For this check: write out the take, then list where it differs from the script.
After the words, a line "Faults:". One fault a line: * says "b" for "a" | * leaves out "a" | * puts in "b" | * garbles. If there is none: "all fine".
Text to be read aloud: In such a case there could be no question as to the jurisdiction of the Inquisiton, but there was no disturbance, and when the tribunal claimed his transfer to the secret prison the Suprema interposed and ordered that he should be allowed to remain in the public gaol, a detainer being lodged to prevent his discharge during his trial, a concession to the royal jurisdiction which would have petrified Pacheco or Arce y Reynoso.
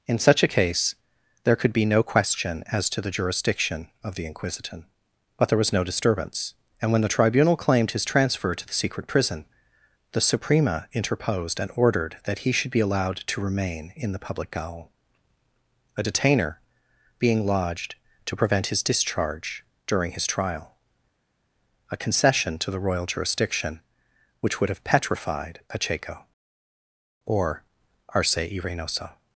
In such a case there could be no question as to the jurisdiction of the Inquisiton, but there was no disturbance, and when the tribunal claimed his transfer to the secret prison the Suprema interposed and ordered that he should be allowed to remain in the public gaol, a detainer being lodged to prevent his discharge during his trial, a concession to the royal jurisdiction which would have petrified Pacheco or Arce y Reynoso.
Faults:
all fine